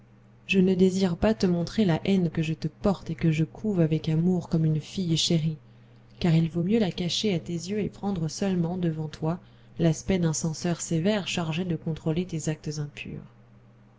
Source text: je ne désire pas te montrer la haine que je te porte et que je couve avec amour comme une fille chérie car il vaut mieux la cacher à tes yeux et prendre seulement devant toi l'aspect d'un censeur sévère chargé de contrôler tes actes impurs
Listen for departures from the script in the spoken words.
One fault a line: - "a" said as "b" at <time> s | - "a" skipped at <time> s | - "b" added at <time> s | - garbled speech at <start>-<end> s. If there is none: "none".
none